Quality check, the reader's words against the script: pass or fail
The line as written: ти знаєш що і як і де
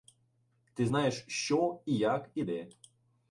pass